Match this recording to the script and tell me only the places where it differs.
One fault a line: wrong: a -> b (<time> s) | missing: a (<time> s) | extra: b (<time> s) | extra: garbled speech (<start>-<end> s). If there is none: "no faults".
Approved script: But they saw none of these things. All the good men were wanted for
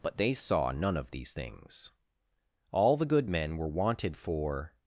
no faults